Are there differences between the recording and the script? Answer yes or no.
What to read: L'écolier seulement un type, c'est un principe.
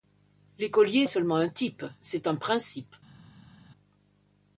no